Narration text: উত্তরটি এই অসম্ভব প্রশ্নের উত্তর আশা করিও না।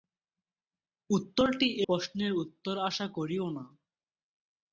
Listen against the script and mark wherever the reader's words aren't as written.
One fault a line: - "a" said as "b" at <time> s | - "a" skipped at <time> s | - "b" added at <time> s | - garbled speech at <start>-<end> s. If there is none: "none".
- "এই অসম্ভব" skipped at 1.7 s